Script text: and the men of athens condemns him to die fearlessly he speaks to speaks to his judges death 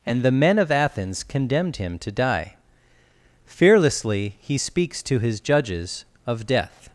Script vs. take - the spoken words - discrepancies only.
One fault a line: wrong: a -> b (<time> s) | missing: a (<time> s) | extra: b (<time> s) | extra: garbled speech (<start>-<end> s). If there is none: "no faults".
wrong: condemns -> condemned (1.2 s)
missing: speaks to (5.2 s)
extra: of (6.3 s)